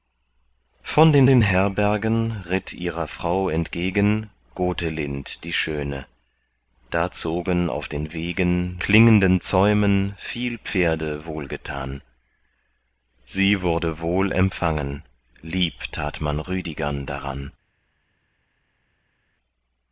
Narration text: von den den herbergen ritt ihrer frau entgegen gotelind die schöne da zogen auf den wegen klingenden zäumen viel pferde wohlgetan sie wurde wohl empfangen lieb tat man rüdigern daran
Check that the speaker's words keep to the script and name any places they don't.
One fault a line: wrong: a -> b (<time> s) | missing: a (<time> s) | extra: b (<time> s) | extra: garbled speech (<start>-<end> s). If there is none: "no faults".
no faults